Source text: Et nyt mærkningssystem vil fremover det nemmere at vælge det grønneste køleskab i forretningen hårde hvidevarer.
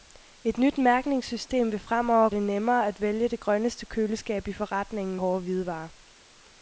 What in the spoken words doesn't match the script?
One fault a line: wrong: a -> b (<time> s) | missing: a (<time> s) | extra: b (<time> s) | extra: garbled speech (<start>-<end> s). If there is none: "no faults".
no faults